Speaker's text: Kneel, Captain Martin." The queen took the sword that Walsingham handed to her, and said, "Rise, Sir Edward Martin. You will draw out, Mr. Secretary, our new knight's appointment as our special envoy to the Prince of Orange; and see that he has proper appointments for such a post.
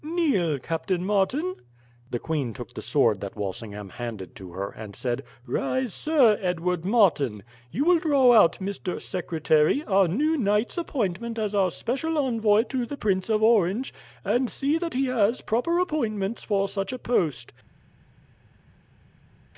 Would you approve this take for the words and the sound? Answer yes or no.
yes